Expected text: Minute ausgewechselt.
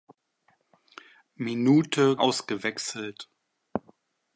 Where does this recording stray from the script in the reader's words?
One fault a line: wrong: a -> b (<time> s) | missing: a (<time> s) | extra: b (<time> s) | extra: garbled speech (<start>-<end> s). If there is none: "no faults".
no faults